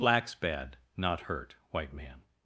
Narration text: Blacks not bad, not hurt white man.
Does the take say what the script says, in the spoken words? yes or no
no